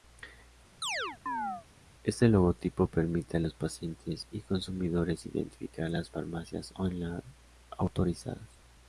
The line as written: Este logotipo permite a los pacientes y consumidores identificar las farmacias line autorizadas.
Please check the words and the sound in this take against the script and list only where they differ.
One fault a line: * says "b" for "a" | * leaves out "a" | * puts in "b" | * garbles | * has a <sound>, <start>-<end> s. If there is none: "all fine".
* has a chirp, 0.8-1.7 s
* puts in "on"